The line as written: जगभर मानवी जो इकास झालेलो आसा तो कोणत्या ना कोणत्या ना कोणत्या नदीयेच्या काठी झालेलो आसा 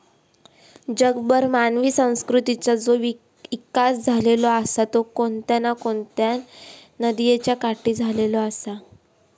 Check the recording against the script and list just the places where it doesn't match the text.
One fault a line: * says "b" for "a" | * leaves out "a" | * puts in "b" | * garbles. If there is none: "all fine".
* puts in "संस्कृतीचा"
* leaves out "ना कोणत्या"